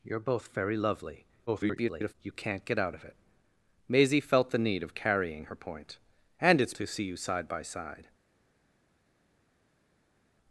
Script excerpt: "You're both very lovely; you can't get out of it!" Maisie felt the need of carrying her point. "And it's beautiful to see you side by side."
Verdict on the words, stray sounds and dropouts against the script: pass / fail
fail